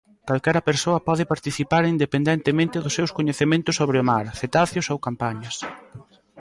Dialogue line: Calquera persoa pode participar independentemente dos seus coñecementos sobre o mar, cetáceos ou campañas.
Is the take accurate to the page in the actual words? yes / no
yes